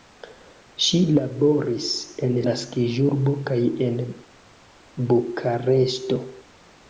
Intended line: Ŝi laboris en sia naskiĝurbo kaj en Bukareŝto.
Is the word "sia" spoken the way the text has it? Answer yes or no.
no